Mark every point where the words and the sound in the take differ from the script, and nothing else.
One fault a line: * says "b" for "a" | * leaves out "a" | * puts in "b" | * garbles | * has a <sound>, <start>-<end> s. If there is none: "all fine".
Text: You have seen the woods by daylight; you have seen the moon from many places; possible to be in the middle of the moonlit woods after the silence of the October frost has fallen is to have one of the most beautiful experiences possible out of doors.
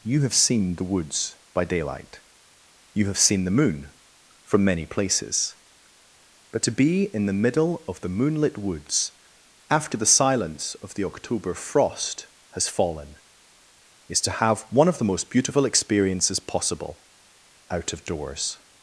* says "but" for "possible"